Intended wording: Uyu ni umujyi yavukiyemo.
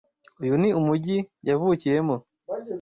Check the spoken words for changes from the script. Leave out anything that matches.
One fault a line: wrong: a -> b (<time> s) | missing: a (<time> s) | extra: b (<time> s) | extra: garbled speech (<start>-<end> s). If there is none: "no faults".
no faults